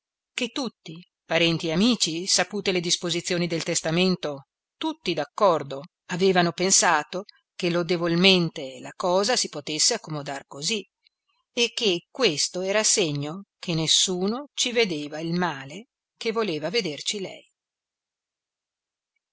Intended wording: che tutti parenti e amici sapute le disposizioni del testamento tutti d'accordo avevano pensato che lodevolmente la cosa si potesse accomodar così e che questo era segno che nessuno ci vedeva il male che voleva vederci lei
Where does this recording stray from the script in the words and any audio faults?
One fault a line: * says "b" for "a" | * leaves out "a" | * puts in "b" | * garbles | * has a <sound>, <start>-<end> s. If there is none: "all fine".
all fine